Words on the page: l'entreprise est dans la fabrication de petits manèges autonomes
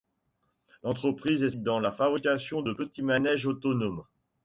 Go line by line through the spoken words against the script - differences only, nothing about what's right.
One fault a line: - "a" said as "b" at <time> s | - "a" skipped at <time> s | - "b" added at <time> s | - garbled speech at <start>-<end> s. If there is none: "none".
none